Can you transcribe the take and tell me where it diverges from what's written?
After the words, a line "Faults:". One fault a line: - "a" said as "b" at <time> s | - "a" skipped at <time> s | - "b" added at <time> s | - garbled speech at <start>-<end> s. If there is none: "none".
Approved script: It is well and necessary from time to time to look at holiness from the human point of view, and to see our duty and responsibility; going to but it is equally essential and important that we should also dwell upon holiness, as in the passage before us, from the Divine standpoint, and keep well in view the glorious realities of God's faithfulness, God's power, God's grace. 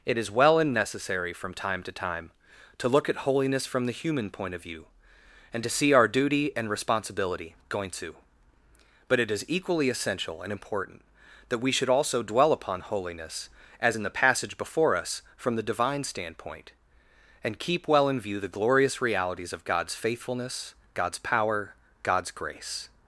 It is well and necessary from time to time to look at holiness from the human point of view, and to see our duty and responsibility; going to but it is equally essential and important that we should also dwell upon holiness, as in the passage before us, from the Divine standpoint, and keep well in view the glorious realities of God's faithfulness, God's power, God's grace.
Faults:
none